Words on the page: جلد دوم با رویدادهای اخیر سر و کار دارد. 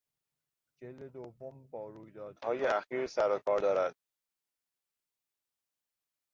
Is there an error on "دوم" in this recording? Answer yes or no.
no